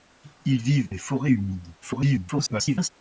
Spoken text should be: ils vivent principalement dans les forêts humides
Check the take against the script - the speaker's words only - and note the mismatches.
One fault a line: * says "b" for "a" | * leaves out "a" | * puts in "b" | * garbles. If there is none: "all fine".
* leaves out "principalement dans"
* garbles